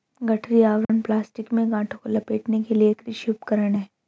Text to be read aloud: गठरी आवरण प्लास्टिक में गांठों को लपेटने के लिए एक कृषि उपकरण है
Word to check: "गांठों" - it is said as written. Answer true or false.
true